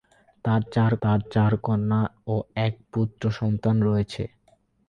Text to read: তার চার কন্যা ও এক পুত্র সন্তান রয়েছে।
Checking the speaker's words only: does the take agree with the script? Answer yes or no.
no